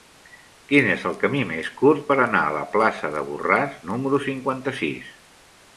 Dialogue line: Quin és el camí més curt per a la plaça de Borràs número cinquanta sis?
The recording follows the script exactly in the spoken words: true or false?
false